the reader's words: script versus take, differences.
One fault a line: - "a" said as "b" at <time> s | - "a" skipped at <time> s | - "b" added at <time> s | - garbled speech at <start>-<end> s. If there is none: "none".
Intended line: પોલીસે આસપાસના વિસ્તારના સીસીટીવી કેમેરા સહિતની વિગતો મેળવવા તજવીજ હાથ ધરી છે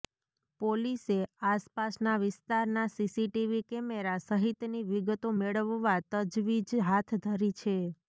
none